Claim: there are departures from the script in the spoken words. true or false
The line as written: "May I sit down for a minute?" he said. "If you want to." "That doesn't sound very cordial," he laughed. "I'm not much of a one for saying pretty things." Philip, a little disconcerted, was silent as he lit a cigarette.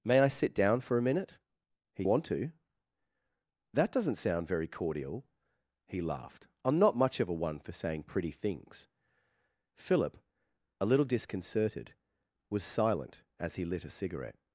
true